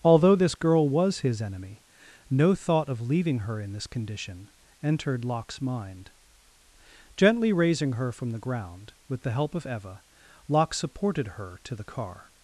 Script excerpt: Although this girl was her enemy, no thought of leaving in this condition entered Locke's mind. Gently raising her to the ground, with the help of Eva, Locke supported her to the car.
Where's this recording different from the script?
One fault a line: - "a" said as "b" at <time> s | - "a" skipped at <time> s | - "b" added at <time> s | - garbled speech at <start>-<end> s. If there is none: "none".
- "her" said as "his" at 1.2 s
- "her" added at 3.4 s
- "to" said as "from" at 8.1 s